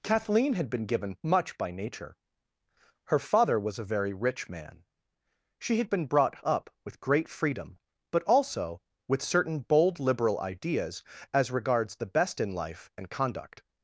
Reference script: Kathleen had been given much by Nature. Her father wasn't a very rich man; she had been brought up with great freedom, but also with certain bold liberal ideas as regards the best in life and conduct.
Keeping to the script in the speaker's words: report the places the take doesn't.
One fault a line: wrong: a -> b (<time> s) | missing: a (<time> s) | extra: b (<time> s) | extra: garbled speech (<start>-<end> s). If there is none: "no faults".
wrong: wasn't -> was (3.6 s)